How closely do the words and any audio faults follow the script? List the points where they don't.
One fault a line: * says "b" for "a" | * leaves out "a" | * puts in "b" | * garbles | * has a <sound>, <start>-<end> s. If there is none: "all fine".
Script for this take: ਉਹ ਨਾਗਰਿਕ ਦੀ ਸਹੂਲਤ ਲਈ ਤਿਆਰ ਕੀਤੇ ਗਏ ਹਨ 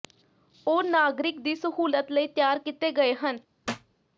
* has a thud, 3.6-4.0 s